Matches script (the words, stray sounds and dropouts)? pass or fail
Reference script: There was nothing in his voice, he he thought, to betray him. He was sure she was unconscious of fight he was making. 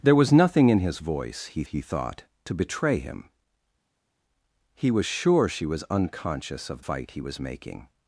pass